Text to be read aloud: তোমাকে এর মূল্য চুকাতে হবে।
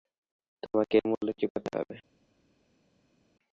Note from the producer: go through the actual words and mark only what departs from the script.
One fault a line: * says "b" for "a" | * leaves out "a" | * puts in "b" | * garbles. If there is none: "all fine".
all fine